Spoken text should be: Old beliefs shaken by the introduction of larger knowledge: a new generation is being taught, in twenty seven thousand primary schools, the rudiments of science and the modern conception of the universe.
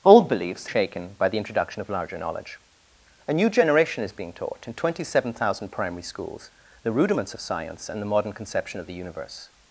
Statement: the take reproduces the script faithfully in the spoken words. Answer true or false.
true